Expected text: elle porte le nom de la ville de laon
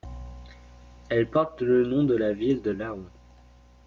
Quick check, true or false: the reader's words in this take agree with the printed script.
true